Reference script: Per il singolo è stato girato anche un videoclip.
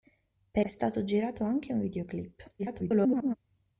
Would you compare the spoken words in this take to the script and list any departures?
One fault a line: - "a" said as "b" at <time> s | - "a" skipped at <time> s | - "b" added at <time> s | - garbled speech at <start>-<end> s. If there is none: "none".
- "il singolo" skipped at 0.7 s
- garbled speech at 2.6-3.3 s